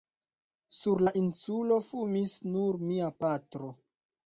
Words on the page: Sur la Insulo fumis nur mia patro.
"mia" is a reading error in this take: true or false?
false